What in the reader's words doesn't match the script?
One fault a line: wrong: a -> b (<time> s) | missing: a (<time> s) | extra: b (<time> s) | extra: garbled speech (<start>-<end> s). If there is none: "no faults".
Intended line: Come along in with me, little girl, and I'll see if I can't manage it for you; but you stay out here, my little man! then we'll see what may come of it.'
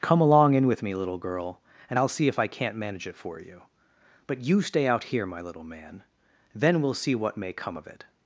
no faults